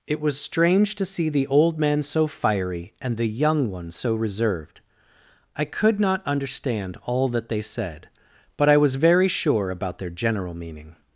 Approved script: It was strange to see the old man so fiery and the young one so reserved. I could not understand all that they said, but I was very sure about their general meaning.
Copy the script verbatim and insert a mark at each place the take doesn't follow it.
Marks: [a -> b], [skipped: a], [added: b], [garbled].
It was strange to see the old man so fiery and the young one so reserved. I could not understand all that they said, but I was very sure about their general meaning.